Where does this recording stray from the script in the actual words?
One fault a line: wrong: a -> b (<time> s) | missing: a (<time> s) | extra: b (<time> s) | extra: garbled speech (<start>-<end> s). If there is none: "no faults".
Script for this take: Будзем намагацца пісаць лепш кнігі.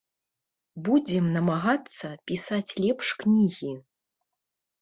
no faults